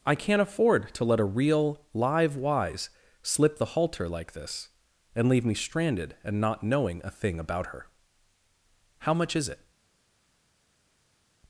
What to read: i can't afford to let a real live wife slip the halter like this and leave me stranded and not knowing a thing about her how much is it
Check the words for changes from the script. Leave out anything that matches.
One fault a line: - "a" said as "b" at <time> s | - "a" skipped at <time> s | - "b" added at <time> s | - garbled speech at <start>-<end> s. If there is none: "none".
- "wife" said as "wise" at 2.4 s